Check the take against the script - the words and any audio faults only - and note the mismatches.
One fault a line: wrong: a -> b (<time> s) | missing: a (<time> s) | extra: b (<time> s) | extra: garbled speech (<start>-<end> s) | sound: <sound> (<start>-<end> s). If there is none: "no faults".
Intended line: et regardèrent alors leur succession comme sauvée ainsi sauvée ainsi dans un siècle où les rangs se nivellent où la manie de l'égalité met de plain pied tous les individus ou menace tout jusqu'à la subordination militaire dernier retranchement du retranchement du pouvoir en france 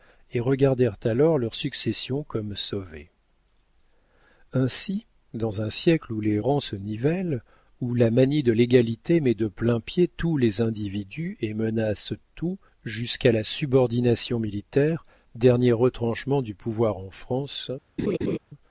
missing: sauvée ainsi (5.0 s)
wrong: ou -> et (11.4 s)
missing: retranchement du (16.5 s)
sound: laugh (18.0-18.4 s)